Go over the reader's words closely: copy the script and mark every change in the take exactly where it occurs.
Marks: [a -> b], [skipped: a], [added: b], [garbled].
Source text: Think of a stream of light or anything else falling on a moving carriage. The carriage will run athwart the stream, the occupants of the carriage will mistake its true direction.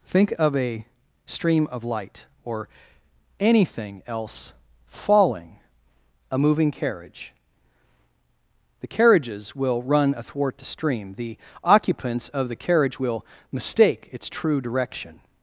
Think of a stream of light or anything else falling [skipped: on] a moving carriage. The [carriage -> carriages] will run athwart the stream, the occupants of the carriage will mistake its true direction.